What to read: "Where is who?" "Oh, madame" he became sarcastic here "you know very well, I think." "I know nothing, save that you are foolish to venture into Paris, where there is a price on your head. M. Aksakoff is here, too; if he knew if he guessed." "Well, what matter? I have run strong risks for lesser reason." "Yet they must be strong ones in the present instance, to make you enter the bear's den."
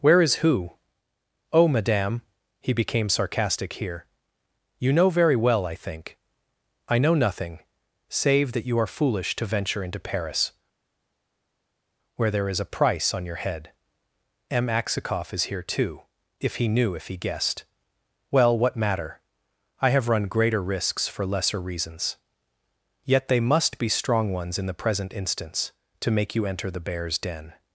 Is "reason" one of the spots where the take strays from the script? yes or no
yes